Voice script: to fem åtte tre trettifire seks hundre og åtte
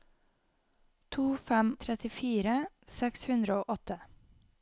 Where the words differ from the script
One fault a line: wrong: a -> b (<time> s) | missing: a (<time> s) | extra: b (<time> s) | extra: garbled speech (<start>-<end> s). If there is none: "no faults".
missing: åtte tre (1.8 s)